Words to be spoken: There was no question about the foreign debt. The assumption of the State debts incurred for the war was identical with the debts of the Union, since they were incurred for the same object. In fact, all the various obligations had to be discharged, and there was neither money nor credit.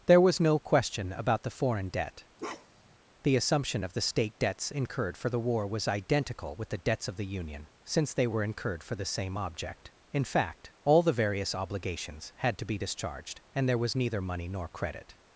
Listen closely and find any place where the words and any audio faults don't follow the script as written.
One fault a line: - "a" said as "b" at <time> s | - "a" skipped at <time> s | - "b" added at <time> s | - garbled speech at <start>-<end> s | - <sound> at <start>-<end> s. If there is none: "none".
- bark at 2.4-3.0 s